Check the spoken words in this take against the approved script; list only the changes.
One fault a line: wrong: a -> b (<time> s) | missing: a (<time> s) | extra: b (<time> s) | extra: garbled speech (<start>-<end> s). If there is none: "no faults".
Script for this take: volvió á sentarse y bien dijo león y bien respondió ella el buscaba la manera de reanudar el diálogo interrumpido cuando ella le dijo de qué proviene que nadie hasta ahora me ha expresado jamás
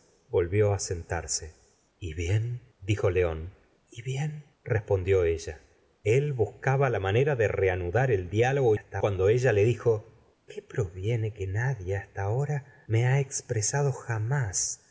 wrong: interrumpido -> hasta (8.7 s)
missing: de (10.1 s)